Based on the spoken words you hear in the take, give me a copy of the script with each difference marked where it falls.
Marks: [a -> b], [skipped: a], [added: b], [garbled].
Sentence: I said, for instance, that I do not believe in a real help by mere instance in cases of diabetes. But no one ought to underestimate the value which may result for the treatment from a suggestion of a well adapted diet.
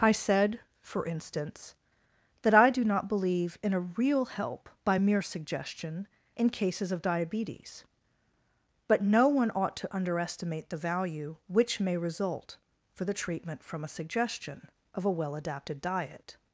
I said, for instance, that I do not believe in a real help by mere [instance -> suggestion] in cases of diabetes. But no one ought to underestimate the value which may result for the treatment from a suggestion of a well adapted diet.